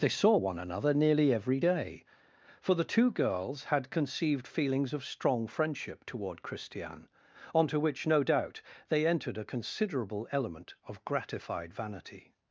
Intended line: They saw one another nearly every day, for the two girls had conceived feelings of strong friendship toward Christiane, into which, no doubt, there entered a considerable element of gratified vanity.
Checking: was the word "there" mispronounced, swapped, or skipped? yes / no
yes